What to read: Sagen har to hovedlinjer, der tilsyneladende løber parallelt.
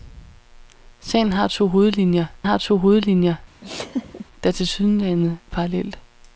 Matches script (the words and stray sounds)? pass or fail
fail